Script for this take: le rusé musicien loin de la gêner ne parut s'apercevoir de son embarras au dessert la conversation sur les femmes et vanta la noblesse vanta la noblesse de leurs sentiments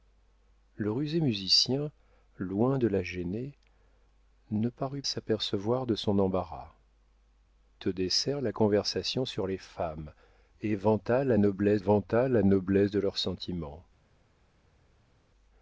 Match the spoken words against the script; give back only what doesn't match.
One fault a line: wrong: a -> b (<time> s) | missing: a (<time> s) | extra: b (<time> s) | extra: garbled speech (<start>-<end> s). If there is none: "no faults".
no faults